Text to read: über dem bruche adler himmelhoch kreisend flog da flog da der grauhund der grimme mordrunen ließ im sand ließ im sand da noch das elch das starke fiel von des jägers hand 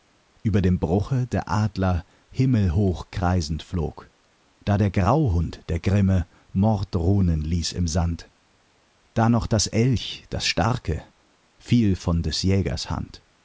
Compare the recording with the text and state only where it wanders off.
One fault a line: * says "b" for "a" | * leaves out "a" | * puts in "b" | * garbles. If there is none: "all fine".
* puts in "der"
* leaves out "flog da"
* leaves out "ließ im sand"